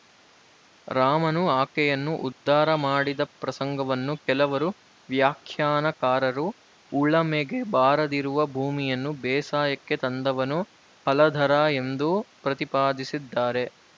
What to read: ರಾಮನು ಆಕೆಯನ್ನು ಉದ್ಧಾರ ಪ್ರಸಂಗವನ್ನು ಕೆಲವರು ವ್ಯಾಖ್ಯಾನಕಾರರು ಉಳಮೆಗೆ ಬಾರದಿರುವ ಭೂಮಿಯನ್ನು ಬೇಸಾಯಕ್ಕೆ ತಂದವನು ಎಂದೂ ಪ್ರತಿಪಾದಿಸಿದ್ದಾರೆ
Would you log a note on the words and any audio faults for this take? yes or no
yes